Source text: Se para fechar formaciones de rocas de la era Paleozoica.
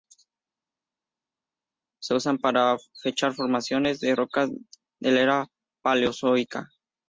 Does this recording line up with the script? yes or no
no